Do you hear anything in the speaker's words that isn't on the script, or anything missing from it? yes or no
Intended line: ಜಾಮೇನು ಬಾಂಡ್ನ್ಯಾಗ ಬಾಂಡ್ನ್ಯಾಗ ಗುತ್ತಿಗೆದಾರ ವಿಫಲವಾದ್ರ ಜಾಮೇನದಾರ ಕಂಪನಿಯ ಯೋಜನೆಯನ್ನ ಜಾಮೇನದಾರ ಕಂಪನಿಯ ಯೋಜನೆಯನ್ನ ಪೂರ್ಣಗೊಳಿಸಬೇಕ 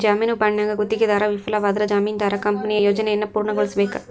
yes